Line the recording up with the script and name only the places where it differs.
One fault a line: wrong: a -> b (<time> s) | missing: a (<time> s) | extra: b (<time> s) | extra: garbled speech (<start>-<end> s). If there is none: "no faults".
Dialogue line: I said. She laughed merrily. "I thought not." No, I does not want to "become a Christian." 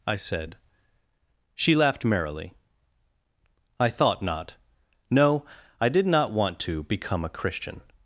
wrong: does -> did (5.9 s)